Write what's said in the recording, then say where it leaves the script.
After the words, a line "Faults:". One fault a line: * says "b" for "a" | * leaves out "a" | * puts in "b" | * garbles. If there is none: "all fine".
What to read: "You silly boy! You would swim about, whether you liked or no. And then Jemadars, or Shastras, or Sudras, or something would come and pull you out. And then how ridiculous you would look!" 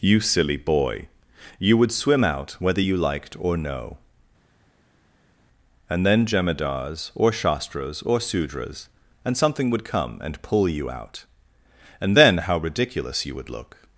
"You silly boy! You would swim out, whether you liked or no. And then Jemadars, or Shastras, or Sudras, and something would come and pull you out. And then how ridiculous you would look!"
Faults:
* says "out" for "about"
* says "and" for "or"